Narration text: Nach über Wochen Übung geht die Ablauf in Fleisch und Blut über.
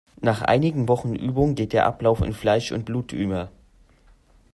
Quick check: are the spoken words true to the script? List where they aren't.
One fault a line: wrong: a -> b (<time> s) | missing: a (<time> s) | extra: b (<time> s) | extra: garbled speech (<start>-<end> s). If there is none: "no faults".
wrong: über -> einigen (0.4 s)
wrong: die -> der (1.7 s)